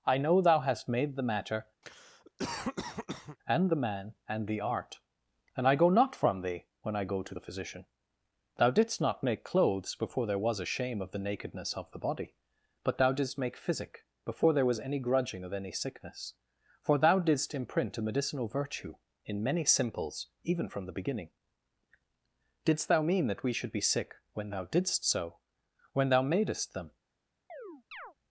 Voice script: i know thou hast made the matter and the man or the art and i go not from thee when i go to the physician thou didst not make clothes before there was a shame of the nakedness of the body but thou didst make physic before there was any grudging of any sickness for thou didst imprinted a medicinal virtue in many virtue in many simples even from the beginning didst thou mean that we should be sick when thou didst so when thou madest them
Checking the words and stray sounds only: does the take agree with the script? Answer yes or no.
no